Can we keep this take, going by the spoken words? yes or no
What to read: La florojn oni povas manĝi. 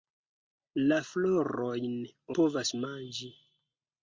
no